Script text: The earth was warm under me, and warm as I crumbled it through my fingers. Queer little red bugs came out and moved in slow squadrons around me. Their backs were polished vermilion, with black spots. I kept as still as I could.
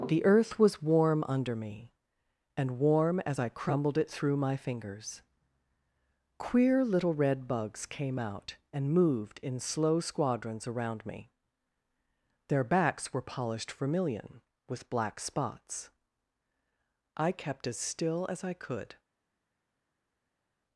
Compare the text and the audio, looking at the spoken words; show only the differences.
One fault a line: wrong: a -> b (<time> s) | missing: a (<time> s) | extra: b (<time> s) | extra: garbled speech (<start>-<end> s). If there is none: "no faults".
no faults